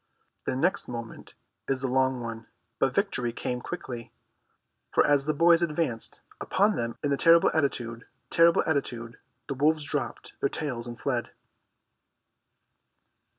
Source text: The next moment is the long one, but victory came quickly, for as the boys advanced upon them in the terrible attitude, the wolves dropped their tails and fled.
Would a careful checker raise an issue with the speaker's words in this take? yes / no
yes